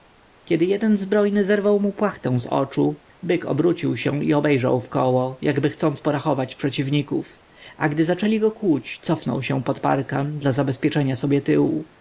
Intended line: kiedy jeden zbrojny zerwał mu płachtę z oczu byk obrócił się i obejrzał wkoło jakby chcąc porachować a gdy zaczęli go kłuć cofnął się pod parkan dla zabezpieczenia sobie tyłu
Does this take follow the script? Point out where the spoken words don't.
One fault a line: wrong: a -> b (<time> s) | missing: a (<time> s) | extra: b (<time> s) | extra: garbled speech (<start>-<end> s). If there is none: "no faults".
extra: przeciwników (6.5 s)